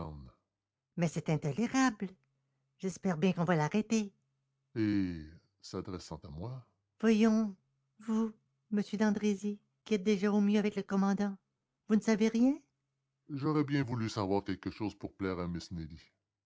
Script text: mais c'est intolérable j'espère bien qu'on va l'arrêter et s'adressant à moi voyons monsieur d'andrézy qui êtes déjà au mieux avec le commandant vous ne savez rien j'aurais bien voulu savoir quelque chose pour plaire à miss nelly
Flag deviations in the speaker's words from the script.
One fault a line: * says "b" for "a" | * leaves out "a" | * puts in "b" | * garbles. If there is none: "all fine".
* puts in "vous"